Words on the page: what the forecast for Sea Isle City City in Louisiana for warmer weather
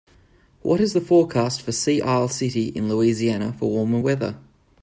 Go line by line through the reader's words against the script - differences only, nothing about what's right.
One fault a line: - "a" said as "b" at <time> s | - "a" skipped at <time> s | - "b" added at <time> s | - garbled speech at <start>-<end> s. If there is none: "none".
- "is" added at 0.8 s
- "City" skipped at 2.7 s